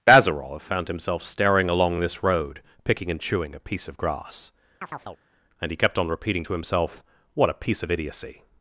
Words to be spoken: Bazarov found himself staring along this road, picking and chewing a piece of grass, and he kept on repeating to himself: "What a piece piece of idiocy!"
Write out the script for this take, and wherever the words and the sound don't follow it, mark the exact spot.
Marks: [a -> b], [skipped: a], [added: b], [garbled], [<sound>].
Bazarov found himself staring along this road, picking and chewing a piece of grass, [chirp] and he kept on repeating to himself: "What a piece [skipped: piece] of idiocy!"